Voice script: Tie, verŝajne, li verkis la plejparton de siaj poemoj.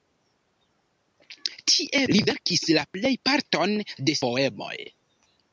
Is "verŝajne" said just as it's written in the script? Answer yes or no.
no